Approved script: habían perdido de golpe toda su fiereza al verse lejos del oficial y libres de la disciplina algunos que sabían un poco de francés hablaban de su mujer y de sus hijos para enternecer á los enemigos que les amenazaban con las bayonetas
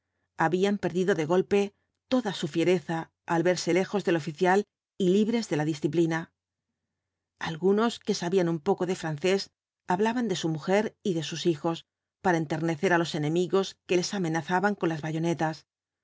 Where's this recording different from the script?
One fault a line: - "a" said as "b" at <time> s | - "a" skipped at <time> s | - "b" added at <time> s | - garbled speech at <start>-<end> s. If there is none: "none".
none